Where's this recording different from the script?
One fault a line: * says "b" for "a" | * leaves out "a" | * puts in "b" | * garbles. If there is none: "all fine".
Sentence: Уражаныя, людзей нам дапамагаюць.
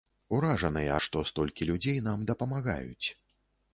* puts in "што столькі"